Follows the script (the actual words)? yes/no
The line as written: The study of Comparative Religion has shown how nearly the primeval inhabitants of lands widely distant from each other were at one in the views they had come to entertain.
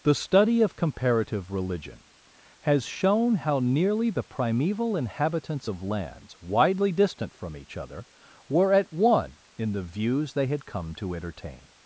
yes